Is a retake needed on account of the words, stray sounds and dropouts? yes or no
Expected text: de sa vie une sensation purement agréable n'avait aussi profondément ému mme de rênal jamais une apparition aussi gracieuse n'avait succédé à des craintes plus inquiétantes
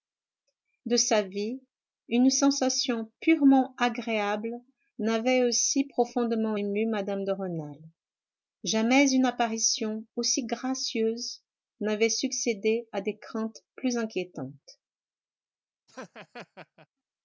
yes